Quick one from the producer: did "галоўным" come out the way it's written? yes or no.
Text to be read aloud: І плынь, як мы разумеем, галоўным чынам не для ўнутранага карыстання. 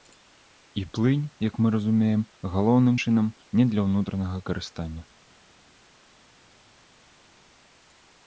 yes